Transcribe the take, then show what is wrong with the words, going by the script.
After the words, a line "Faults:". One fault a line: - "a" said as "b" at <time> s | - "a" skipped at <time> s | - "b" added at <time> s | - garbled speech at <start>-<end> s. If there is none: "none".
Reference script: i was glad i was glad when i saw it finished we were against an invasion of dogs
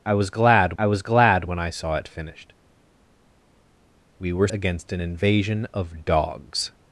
i was glad i was glad when i saw it finished we were against an invasion of dogs
Faults:
none